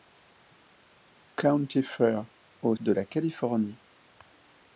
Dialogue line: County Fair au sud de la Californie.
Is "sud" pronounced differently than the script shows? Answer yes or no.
yes